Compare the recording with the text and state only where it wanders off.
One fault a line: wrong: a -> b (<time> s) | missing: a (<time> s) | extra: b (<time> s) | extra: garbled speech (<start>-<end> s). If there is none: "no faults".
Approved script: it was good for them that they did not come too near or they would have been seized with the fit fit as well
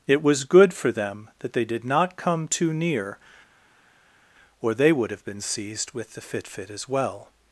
no faults